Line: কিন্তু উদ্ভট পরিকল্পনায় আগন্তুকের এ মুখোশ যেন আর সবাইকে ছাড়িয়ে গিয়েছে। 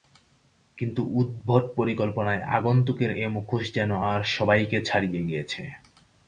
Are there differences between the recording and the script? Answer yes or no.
no